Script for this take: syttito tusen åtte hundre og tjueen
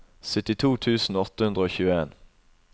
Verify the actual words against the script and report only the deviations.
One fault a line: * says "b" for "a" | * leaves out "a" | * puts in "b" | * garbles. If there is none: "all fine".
all fine